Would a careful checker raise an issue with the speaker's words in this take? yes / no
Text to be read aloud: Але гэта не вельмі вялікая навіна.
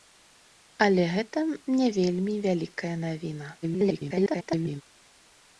yes